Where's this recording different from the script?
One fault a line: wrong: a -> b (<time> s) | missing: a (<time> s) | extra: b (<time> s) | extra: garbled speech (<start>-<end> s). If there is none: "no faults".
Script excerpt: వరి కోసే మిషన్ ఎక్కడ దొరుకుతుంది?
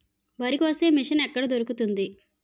no faults